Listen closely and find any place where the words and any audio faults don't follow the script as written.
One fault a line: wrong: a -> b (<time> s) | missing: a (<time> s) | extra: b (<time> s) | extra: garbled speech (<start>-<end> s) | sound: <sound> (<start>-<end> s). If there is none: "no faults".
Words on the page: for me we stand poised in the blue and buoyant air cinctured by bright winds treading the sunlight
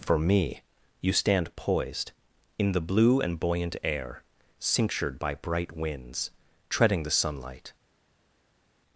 wrong: we -> you (1.0 s)